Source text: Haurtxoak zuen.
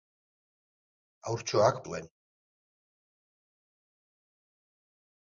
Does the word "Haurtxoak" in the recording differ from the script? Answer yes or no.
no